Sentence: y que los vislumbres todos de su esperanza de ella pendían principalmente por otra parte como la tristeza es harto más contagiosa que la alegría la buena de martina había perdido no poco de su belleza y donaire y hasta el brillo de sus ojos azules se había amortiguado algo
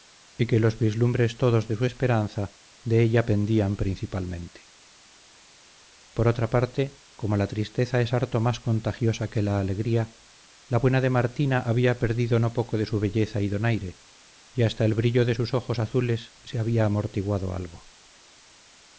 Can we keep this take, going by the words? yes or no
yes